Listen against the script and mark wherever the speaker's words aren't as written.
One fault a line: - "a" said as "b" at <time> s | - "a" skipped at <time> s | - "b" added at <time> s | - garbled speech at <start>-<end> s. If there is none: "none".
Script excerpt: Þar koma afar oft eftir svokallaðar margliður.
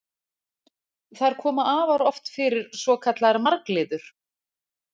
- "eftir" said as "fyrir" at 2.4 s